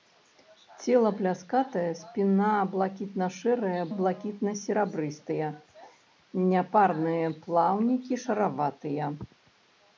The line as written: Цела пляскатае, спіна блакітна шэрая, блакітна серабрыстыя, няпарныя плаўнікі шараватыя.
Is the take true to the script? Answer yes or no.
yes